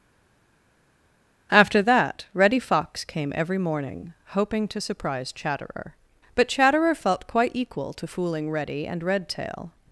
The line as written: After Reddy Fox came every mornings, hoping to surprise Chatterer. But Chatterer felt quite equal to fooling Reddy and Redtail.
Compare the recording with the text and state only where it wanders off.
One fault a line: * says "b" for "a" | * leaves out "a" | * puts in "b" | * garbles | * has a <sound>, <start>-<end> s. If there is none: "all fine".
* puts in "that"
* says "morning" for "mornings"